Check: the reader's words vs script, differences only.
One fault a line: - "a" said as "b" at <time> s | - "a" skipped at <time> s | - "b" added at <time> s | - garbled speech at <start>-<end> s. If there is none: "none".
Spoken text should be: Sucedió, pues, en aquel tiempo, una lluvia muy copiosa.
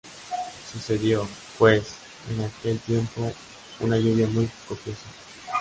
none